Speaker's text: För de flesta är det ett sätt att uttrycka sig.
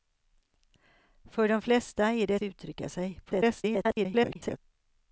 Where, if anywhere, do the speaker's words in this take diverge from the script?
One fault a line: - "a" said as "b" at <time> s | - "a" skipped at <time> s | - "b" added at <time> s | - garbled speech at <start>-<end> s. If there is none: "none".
- "sätt att" skipped at 2.4 s
- garbled speech at 3.3-4.6 s